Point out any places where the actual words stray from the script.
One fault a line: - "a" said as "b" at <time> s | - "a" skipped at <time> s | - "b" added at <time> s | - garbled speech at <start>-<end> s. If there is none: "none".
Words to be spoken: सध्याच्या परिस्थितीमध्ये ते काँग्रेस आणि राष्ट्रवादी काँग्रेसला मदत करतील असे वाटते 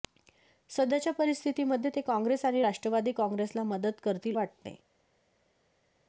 - "असे" skipped at 4.4 s